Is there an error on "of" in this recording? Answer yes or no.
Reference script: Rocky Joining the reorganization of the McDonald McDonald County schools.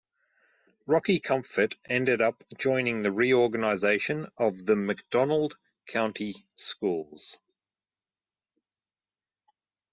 no